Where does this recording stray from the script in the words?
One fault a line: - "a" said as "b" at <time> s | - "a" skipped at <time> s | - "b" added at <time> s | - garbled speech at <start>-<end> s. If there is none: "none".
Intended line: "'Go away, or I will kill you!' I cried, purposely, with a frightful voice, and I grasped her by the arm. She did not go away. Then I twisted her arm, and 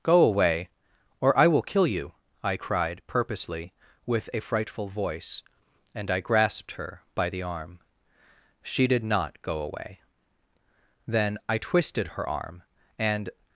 none